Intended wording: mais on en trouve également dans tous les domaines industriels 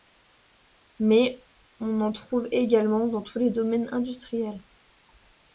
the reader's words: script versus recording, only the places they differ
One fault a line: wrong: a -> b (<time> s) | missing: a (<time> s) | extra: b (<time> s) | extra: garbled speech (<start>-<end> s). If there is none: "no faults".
no faults